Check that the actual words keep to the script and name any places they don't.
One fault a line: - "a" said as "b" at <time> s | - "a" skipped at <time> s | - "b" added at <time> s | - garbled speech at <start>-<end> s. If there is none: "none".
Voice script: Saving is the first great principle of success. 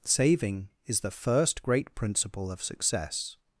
none